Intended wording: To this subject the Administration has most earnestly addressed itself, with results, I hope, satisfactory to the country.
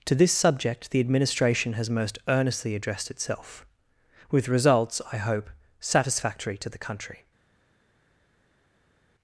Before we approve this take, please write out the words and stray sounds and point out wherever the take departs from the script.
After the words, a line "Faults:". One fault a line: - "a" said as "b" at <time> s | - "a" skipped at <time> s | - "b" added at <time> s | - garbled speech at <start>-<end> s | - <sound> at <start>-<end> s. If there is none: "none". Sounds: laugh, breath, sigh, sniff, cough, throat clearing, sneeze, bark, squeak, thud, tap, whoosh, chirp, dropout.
To this subject the Administration has most earnestly addressed itself, with results, I hope, satisfactory to the country.
Faults:
none